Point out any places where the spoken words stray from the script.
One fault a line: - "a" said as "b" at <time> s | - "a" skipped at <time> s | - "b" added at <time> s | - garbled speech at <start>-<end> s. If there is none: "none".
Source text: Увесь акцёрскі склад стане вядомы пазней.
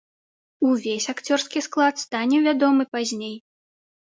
none